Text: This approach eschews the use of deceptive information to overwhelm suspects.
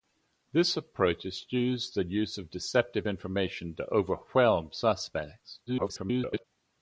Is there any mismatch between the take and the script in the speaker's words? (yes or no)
yes